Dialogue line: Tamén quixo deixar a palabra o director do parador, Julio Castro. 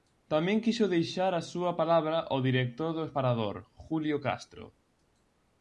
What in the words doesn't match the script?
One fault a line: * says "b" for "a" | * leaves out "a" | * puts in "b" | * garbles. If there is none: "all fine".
* puts in "súa"